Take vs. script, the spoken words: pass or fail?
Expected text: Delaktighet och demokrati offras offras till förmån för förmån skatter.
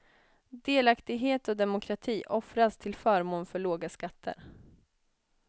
fail